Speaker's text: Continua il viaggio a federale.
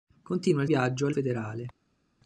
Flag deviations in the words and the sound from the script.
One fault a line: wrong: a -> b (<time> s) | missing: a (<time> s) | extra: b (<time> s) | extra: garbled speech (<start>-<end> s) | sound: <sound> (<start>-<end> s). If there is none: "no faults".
no faults